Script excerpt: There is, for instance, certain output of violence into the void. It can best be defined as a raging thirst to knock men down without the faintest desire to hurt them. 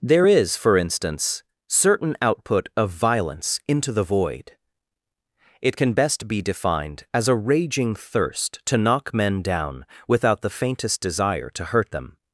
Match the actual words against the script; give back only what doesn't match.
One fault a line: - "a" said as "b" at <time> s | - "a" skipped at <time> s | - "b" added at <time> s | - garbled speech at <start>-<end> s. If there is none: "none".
none